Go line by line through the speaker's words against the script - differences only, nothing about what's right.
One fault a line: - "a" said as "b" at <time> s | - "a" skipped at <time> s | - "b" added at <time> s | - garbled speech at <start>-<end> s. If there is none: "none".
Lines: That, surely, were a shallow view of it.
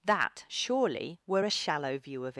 - "it" skipped at 2.3 s